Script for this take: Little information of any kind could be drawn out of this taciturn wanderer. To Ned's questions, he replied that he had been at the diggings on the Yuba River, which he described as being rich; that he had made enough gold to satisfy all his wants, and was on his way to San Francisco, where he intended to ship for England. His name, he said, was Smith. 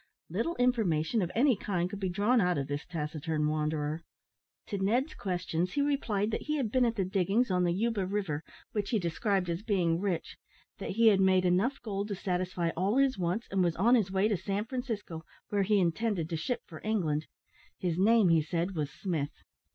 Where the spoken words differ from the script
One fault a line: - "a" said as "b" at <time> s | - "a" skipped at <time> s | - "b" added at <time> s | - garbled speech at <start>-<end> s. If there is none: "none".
none